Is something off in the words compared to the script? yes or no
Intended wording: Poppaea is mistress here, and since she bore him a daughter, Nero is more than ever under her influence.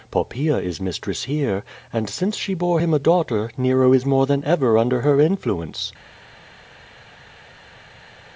no